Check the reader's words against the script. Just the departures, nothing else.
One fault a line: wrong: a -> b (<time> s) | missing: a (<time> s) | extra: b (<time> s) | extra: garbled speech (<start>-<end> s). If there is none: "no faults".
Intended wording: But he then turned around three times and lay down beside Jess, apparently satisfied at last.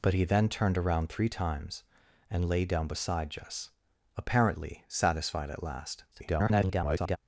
extra: garbled speech (6.1-7.2 s)